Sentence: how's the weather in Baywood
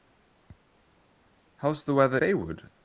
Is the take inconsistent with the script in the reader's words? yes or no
yes